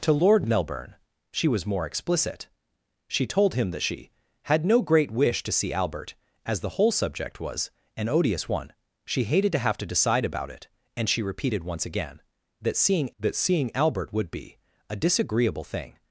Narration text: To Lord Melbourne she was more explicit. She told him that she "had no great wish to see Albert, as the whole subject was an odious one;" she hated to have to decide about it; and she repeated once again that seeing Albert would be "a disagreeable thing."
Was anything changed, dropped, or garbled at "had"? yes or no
no